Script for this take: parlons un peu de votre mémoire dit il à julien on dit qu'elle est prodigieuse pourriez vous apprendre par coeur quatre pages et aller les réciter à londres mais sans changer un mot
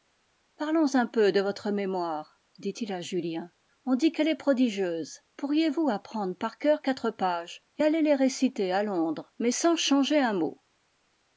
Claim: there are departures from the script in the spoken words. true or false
false